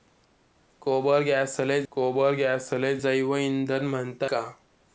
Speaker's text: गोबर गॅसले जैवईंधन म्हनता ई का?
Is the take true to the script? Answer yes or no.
no